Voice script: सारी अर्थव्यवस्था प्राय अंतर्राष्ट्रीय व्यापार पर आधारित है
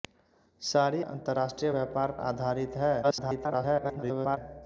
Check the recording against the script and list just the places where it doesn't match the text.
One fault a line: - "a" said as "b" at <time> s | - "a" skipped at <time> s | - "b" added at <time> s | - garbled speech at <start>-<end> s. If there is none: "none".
- "अर्थव्यवस्था प्राय" skipped at 1.0 s
- "पर" skipped at 2.1 s
- garbled speech at 3.0-4.4 s